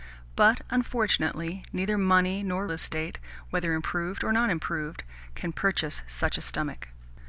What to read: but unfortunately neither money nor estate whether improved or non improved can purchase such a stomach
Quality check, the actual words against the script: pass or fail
pass